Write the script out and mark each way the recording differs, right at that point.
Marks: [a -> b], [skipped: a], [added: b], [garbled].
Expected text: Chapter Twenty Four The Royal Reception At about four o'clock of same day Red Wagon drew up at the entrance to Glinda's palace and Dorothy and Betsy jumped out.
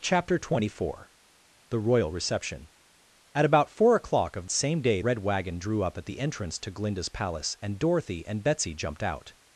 Chapter Twenty Four The Royal Reception At about four o'clock of same day Red Wagon drew up at the entrance to Glinda's palace and Dorothy and Betsy jumped out.